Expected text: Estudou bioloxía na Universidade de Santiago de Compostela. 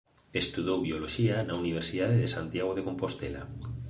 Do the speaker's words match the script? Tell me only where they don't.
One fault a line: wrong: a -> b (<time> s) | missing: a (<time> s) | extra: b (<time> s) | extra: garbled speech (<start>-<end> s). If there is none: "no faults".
no faults